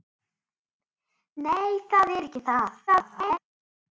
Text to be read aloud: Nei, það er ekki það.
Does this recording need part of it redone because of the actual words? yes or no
yes